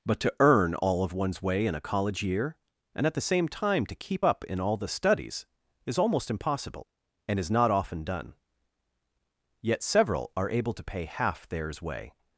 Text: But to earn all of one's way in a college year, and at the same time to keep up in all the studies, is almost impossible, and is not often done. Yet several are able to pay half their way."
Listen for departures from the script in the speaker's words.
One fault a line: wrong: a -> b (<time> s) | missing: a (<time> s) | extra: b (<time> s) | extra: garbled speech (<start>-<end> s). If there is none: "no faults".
wrong: their -> theirs (11.5 s)